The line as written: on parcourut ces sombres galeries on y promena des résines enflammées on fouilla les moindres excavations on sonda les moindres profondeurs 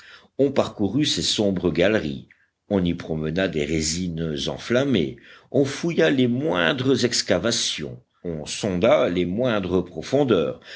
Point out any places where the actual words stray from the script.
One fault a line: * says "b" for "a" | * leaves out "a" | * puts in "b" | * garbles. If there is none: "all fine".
all fine